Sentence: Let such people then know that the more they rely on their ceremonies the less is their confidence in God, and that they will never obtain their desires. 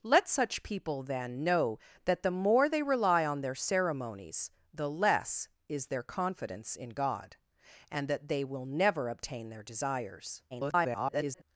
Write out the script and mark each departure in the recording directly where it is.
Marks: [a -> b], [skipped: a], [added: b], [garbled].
Let such people then know that the more they rely on their ceremonies the less is their confidence in God, and that they will never obtain their desires. [garbled]